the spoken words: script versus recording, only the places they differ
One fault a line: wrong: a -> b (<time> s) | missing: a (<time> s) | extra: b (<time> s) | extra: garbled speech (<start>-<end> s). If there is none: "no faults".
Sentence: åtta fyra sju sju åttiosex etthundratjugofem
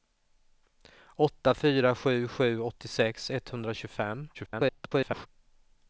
extra: garbled speech (4.3-5.3 s)